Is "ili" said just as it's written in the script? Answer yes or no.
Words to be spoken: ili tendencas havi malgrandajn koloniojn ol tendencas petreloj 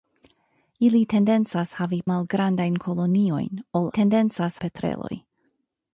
yes